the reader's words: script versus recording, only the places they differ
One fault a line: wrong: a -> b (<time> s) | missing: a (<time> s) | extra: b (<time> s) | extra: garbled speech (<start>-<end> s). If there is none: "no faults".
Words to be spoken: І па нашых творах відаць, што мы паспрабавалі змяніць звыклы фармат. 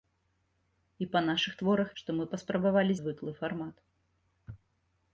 missing: відаць (1.9 s)
missing: змяніць (2.9 s)